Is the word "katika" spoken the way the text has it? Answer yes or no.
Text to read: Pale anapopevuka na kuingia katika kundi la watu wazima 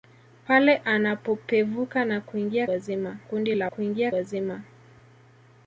no